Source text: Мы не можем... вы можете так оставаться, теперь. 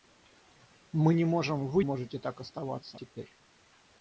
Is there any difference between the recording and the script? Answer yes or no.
no